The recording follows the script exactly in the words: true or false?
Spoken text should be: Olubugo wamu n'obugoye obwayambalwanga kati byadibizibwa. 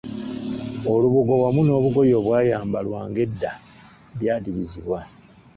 false